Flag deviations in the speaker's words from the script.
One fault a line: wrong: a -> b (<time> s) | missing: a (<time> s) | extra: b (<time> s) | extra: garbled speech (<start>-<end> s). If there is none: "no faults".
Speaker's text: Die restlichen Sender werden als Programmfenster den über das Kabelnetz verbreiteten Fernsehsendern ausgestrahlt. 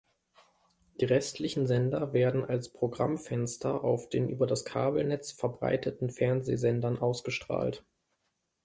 extra: auf (3.8 s)